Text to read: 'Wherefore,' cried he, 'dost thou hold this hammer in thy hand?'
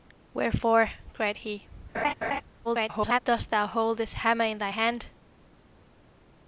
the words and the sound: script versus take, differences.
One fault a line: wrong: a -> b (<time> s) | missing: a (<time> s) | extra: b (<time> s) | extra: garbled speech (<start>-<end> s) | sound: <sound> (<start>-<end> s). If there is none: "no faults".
sound: laugh (1.9-2.4 s)
extra: garbled speech (2.6-3.2 s)